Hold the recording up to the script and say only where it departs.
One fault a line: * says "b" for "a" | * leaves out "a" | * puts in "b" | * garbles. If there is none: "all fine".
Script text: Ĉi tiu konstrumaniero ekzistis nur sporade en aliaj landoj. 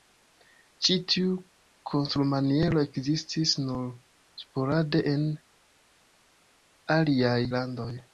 all fine